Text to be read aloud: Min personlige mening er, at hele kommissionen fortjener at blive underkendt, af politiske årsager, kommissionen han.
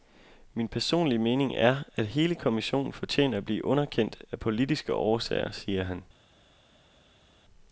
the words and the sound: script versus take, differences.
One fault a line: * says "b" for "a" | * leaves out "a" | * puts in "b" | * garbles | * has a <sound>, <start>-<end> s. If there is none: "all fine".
* says "siger" for "kommissionen"